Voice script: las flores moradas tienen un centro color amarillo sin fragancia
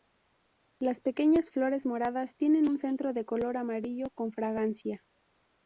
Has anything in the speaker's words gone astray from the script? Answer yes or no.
yes